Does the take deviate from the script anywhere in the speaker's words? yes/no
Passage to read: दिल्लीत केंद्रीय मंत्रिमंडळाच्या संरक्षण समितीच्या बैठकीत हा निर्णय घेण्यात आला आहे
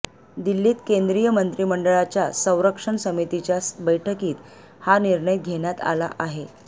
no